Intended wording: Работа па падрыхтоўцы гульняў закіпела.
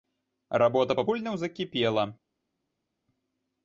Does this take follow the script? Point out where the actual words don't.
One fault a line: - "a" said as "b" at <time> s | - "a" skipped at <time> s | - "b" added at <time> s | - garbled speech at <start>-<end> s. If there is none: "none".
- "падрыхтоўцы" skipped at 1.1 s